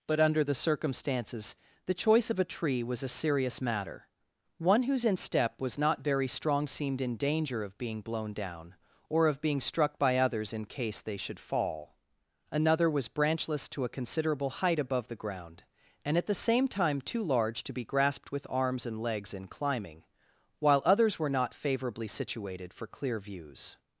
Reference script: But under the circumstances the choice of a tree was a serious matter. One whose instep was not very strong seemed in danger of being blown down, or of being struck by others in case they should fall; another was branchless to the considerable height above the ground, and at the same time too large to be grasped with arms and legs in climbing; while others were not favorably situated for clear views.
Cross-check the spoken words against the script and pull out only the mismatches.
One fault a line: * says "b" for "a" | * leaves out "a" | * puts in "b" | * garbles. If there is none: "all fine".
* says "a" for "the"